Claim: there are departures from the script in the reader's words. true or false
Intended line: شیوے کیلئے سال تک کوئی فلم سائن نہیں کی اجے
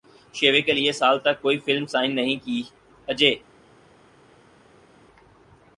false